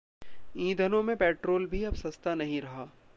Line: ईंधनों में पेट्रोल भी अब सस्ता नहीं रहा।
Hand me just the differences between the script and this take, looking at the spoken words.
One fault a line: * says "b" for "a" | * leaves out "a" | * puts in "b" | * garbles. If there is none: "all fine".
all fine